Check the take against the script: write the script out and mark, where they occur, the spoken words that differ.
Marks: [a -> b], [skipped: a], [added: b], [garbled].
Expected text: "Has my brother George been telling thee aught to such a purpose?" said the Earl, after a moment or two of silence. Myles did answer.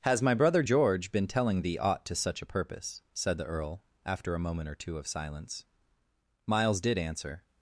"Has my brother George been telling thee aught to such a purpose?" said the Earl, after a moment or two of silence. Myles did answer.